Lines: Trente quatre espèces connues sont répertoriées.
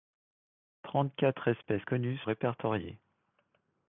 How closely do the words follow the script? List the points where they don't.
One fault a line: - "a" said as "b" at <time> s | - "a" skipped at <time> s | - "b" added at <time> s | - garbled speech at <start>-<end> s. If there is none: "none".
- "sont" skipped at 2.2 s